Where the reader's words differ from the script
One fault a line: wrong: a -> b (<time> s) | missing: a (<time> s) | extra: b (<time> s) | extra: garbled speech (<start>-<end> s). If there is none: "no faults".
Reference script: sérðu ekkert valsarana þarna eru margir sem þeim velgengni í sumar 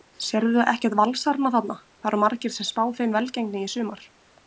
extra: það (2.0 s)
extra: spá (2.7 s)